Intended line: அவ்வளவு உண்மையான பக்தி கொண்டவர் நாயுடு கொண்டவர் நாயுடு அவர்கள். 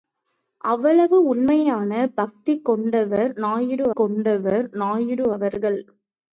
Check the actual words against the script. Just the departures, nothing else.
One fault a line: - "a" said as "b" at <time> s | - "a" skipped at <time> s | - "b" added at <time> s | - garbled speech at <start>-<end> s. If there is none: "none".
none